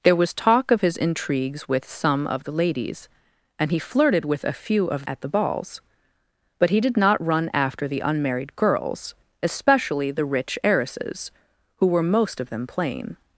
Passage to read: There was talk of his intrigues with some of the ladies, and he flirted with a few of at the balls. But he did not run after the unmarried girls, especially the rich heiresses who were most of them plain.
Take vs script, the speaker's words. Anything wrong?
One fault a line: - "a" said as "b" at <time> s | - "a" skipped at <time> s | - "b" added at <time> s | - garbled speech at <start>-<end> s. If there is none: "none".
none